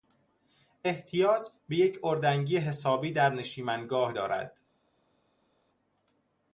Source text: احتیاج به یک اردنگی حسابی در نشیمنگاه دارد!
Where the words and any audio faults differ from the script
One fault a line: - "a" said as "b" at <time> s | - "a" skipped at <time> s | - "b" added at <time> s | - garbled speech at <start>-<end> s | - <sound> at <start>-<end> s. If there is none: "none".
none